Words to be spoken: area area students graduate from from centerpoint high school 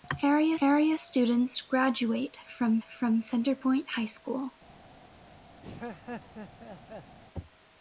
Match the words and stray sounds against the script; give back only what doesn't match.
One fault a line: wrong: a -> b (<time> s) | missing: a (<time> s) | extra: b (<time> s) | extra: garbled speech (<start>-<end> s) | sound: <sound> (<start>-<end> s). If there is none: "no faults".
sound: laugh (5.6-7.2 s)